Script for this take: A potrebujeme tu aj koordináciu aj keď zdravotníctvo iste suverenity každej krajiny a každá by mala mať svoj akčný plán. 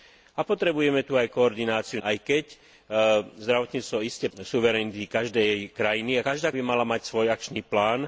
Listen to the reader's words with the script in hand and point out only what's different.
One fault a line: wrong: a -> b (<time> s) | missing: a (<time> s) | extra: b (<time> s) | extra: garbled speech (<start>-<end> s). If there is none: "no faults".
no faults